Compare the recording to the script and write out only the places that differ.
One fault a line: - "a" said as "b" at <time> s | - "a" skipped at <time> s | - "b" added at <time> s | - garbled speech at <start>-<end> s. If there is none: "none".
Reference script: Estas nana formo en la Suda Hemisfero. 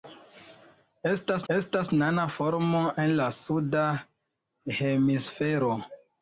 - "estas" added at 1.5 s